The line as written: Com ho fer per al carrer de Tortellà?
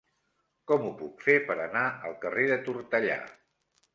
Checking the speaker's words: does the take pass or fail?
fail